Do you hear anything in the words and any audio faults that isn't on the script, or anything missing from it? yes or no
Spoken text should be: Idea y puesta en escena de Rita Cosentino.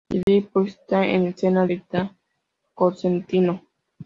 yes